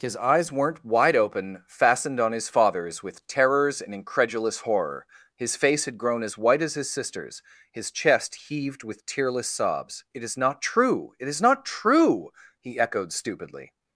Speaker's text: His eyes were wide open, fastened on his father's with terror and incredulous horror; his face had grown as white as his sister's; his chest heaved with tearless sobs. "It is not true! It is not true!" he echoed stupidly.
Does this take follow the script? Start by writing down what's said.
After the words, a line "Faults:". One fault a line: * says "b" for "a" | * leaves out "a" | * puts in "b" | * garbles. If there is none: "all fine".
His eyes weren't wide open, fastened on his father's with terrors and incredulous horror; his face had grown as white as his sister's; his chest heaved with tearless sobs. "It is not true! It is not true!" he echoed stupidly.
Faults:
* says "weren't" for "were"
* says "terrors" for "terror"